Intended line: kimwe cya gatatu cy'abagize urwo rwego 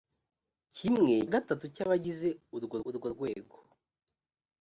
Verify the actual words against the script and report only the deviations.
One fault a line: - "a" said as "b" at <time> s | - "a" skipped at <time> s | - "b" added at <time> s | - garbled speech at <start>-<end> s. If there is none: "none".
- "cya" skipped at 1.1 s
- "urwo" added at 2.9 s